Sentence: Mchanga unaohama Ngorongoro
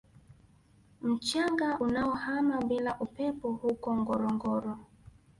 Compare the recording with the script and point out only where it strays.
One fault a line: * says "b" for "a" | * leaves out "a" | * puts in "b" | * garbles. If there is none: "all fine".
* puts in "bila upepo huko"